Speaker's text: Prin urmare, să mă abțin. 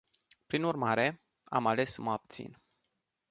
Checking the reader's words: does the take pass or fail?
fail